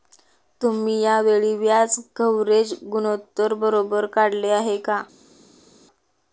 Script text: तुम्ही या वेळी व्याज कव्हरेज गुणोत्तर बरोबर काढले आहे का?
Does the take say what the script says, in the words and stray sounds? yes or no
yes